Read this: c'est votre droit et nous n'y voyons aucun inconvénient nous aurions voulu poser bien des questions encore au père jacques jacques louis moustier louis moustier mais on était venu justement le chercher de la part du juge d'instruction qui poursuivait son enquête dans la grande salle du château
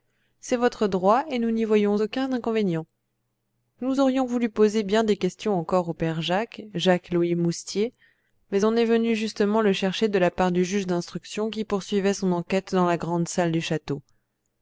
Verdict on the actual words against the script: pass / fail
fail